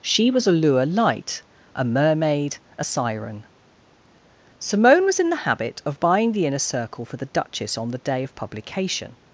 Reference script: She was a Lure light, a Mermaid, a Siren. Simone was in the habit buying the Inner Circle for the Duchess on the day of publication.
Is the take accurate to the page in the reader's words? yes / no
no